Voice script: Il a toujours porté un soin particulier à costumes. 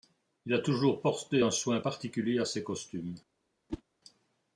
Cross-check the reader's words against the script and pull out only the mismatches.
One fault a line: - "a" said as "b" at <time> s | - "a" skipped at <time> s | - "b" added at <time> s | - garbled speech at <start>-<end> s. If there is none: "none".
- "ses" added at 2.4 s